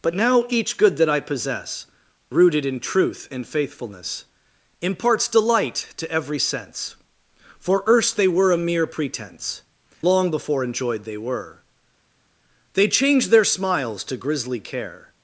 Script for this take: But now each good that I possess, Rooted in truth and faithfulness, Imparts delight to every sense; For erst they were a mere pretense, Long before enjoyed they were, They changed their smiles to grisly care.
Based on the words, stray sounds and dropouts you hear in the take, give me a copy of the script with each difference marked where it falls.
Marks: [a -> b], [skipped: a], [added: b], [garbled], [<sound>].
But now each good that I possess, Rooted in truth and faithfulness, Imparts delight to every sense; For erst they were a mere pretense, Long before enjoyed they were, They changed their smiles to grisly care.